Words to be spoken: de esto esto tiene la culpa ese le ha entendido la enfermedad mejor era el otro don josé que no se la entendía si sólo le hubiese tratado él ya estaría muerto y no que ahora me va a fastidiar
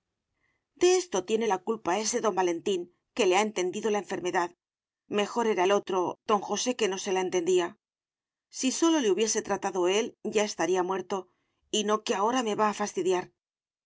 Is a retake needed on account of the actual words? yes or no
yes